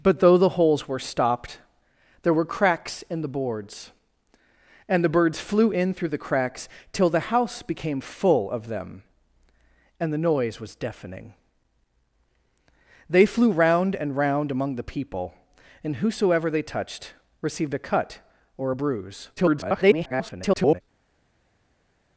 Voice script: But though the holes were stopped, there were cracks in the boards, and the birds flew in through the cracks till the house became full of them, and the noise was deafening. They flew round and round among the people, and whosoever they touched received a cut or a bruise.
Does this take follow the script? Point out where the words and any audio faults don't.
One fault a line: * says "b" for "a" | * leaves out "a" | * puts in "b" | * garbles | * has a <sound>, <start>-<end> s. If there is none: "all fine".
* garbles